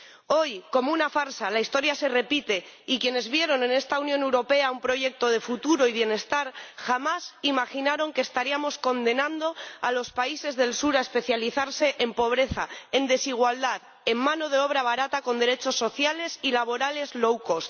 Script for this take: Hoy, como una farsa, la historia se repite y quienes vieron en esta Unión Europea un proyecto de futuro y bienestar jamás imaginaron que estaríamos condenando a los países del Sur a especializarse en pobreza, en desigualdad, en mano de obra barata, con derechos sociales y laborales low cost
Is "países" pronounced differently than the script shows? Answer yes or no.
no